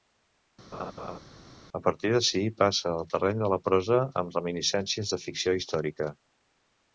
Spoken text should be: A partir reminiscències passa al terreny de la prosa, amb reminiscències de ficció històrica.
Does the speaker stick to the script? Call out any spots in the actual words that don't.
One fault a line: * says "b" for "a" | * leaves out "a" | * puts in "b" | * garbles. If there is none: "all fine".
* says "d'ací" for "reminiscències"